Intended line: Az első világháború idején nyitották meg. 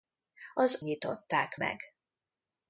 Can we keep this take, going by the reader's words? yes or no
no